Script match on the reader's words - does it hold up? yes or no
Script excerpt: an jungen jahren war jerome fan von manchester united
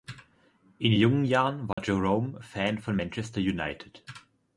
no